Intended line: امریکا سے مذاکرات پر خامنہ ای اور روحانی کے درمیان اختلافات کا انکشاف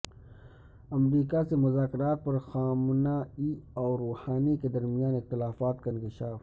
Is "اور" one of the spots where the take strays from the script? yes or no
no